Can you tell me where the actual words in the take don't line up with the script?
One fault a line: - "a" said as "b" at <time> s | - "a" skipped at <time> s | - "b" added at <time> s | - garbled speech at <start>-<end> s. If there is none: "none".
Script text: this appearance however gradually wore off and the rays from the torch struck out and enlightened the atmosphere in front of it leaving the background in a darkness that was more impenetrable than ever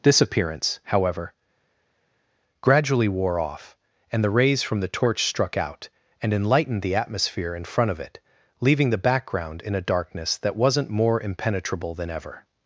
- "was" said as "wasn't" at 10.5 s